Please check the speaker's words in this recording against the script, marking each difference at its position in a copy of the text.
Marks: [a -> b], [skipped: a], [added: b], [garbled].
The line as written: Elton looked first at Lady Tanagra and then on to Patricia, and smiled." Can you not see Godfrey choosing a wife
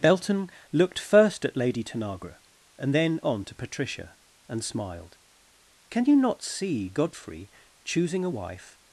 [Elton -> Belton] looked first at Lady Tanagra and then on to Patricia, and smiled." Can you not see Godfrey choosing a wife